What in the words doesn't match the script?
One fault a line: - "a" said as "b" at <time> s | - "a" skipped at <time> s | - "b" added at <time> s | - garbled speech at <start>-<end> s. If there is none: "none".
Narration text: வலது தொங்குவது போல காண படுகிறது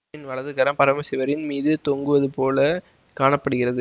- "கரம் பரமசிவரின் மீது" added at 0.5 s